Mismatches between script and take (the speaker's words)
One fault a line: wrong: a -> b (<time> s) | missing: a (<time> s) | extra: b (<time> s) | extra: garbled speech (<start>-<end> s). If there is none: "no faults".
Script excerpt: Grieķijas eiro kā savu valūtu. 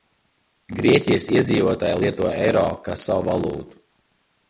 extra: iedzīvotāji lieto (1.3 s)